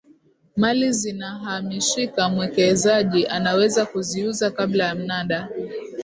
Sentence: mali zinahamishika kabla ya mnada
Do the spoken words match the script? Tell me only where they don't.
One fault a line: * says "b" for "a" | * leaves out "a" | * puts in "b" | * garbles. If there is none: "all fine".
* puts in "mwekezaji anaweza kuziuza"